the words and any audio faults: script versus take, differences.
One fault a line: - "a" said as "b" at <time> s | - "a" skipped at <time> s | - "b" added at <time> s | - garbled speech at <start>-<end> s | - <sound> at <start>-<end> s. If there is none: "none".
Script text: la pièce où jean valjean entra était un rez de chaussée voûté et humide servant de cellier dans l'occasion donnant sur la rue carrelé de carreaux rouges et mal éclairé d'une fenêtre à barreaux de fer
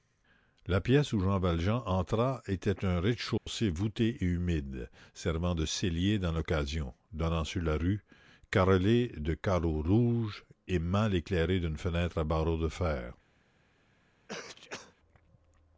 - dropout at 3.4-3.5 s
- sneeze at 14.3-15.0 s